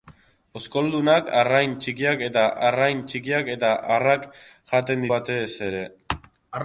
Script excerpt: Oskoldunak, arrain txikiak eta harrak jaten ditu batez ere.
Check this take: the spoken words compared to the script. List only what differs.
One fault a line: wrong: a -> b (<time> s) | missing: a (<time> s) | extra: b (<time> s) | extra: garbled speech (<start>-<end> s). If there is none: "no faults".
extra: arrain txikiak eta (2.7 s)
missing: ditu (5.1 s)